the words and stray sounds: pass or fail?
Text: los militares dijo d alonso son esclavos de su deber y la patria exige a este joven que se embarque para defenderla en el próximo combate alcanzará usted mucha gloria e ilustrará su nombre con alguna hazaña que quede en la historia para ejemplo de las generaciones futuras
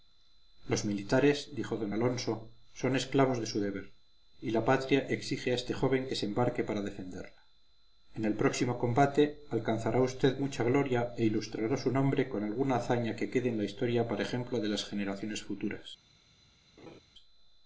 fail